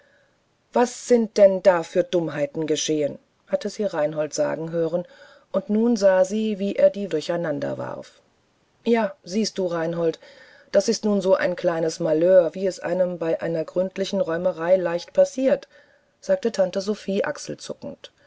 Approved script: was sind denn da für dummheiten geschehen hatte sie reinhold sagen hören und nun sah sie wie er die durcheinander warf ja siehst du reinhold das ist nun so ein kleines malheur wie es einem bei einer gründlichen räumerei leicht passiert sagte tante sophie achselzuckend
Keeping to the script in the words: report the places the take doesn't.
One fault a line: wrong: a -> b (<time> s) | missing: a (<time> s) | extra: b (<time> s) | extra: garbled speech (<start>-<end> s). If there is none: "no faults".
no faults